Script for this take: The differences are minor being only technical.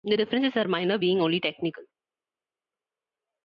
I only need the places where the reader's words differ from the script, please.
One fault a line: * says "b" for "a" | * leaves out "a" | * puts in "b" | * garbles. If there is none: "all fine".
all fine